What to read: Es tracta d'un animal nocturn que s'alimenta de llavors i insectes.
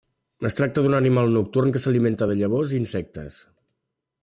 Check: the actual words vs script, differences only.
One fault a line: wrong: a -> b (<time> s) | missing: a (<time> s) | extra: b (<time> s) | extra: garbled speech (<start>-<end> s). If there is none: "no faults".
no faults